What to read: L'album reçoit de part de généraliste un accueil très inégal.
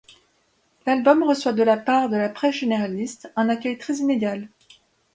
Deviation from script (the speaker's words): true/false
true